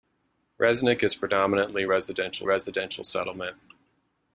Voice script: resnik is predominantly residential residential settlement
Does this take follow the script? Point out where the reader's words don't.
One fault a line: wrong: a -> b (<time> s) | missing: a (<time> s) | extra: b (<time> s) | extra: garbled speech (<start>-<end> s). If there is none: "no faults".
no faults